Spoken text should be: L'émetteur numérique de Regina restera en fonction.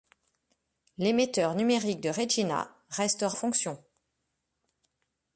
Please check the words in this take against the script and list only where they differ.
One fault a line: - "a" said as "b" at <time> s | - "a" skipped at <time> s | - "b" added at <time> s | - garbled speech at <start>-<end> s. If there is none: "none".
- "en" skipped at 3.4 s